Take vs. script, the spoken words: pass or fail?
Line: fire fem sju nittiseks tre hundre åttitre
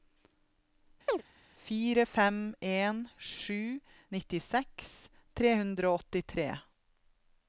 fail